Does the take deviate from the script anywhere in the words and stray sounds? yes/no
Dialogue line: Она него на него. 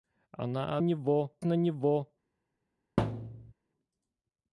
yes